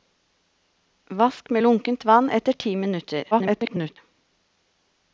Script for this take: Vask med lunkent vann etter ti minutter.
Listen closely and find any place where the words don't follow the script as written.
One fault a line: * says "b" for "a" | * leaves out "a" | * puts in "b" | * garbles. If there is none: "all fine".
* garbles